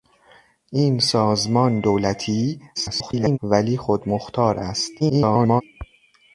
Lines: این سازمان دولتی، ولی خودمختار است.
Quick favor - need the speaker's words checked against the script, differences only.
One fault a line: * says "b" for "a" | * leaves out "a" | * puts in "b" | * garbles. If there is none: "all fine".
* garbles
* garbles